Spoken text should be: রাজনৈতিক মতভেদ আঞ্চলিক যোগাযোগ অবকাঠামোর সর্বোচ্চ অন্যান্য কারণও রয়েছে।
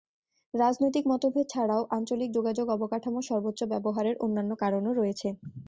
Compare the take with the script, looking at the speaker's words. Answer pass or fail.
fail